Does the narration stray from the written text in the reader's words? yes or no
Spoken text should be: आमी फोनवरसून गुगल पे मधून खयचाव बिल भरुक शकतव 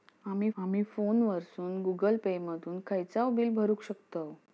yes